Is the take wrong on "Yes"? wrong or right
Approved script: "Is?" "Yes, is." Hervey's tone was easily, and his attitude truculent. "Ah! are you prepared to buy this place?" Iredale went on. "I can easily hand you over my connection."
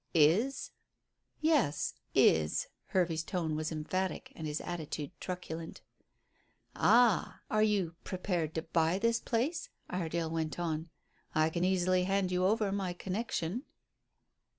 right